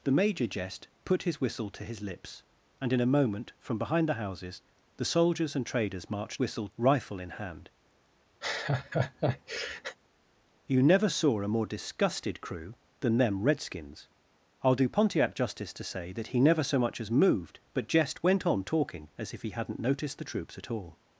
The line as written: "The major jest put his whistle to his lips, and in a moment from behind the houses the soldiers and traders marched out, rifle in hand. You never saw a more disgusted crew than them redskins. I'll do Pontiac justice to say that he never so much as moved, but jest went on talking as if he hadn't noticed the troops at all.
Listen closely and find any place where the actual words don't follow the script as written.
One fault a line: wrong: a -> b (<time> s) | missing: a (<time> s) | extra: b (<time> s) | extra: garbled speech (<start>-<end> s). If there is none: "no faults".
wrong: out -> whistle (6.4 s)